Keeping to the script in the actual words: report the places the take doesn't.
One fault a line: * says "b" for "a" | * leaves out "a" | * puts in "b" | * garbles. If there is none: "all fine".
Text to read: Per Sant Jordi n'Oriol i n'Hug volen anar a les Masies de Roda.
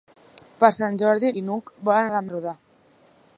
* leaves out "n'Oriol"
* leaves out "anar"
* leaves out "Masies"